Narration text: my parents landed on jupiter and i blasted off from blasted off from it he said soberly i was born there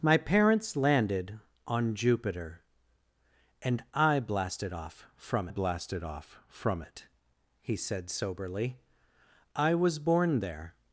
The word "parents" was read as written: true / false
true